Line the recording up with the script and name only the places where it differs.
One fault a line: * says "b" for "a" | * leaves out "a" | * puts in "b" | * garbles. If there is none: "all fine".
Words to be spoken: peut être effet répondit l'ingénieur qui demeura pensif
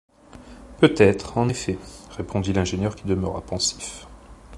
* puts in "en"